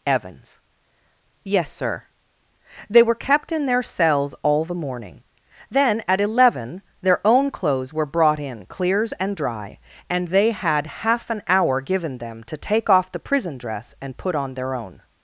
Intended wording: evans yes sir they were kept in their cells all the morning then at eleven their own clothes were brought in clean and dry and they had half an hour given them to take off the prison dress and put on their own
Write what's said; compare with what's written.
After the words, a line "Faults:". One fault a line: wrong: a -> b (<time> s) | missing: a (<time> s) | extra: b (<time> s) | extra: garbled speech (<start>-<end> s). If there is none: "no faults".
evans yes sir they were kept in their cells all the morning then at eleven their own clothes were brought in clears and dry and they had half an hour given them to take off the prison dress and put on their own
Faults:
wrong: clean -> clears (8.7 s)